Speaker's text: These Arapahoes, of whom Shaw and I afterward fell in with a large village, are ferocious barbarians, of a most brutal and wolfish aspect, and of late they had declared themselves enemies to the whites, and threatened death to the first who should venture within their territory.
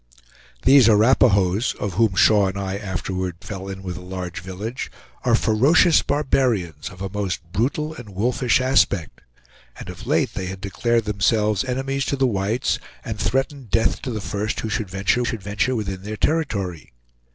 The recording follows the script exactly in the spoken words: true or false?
false